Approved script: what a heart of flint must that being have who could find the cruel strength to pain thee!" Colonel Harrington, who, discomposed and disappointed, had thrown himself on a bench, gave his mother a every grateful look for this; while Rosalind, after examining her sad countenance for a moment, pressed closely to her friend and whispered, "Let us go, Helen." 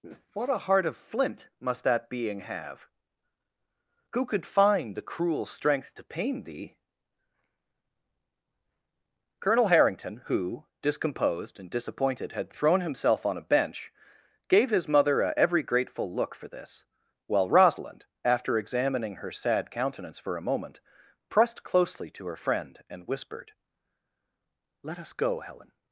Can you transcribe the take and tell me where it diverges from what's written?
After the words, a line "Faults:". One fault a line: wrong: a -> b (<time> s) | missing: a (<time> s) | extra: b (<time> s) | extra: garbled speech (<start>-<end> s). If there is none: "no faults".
what a heart of flint must that being have who could find the cruel strength to pain thee!" Colonel Harrington, who, discomposed and disappointed, had thrown himself on a bench, gave his mother a every grateful look for this; while Rosalind, after examining her sad countenance for a moment, pressed closely to her friend and whispered, "Let us go, Helen."
Faults:
no faults